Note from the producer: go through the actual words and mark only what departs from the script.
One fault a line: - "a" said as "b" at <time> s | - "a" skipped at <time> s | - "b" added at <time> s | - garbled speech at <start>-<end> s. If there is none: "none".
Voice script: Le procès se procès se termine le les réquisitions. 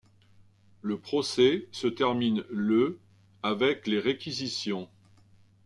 - "procès se" skipped at 1.9 s
- "avec" added at 3.4 s